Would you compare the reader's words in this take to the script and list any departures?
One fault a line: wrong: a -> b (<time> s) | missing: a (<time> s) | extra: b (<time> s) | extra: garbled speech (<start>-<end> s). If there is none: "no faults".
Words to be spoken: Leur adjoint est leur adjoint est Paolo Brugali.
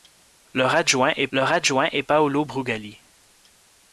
no faults